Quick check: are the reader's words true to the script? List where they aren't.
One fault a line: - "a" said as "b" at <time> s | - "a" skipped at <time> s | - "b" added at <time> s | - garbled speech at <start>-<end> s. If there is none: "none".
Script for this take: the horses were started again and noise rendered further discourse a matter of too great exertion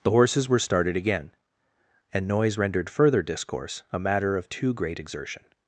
none